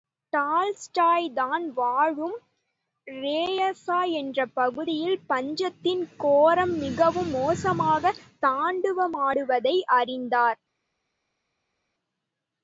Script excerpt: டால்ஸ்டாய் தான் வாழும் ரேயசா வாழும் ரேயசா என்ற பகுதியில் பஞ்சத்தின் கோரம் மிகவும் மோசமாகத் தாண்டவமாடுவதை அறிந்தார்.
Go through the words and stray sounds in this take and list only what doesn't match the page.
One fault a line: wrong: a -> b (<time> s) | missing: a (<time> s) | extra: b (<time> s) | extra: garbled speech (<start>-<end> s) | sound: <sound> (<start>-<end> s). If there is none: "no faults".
missing: வாழும் ரேயசா (4.1 s)